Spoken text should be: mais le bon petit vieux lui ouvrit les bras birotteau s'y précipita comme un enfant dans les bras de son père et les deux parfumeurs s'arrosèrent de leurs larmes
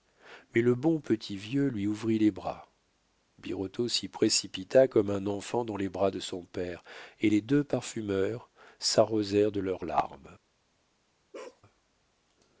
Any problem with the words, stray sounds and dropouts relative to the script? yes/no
yes